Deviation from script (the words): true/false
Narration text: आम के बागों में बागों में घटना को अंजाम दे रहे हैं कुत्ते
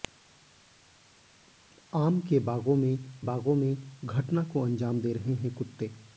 false